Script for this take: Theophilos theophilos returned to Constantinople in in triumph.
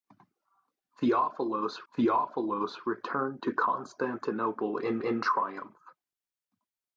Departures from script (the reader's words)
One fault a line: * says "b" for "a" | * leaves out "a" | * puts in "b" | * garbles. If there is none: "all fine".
all fine